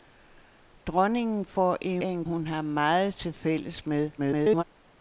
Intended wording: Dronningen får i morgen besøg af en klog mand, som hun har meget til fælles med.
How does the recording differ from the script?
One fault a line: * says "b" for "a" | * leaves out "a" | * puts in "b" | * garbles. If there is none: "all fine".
* leaves out "morgen besøg"
* leaves out "klog mand som"
* garbles